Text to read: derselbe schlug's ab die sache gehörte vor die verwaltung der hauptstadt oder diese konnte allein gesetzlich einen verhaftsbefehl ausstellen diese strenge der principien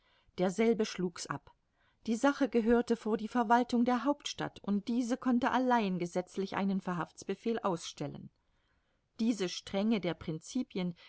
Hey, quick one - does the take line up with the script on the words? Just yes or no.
no